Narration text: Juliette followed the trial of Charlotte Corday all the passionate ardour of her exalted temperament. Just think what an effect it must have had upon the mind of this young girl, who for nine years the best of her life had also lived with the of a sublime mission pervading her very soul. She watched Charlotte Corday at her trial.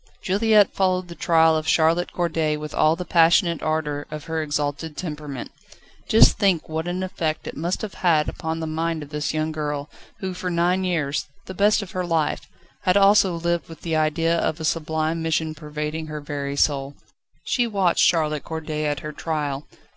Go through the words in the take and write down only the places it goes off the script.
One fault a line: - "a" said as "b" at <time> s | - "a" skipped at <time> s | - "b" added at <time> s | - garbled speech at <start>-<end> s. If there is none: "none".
- "with" added at 2.6 s
- "idea" added at 13.9 s